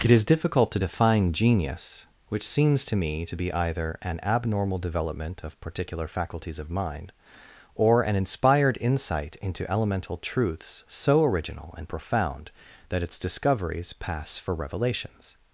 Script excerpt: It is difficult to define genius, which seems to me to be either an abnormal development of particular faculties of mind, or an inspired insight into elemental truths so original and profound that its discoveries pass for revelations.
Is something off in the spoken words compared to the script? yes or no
no